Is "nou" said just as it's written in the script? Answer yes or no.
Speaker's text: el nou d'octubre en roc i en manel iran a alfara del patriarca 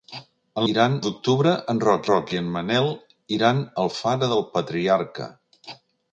no